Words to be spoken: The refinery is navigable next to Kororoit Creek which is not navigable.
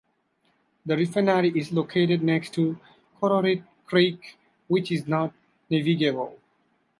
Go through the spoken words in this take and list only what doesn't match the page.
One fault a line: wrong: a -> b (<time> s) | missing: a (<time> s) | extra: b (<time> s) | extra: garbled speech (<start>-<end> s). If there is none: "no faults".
wrong: navigable -> located (1.7 s)